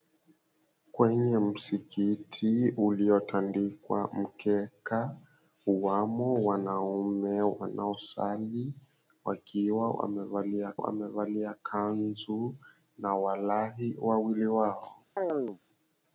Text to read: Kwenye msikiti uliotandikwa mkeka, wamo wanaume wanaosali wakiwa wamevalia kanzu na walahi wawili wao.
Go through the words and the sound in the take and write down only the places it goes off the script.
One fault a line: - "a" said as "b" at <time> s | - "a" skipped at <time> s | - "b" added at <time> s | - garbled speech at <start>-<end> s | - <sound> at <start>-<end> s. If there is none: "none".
- "wamevalia" added at 10.8 s
- chirp at 15.2-15.6 s